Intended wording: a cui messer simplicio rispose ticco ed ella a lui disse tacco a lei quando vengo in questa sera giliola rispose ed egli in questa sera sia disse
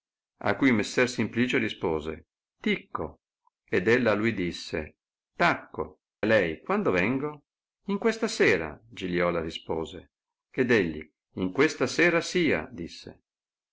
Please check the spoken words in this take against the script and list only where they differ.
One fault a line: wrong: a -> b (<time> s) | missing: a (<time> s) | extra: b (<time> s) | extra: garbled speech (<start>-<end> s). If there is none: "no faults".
no faults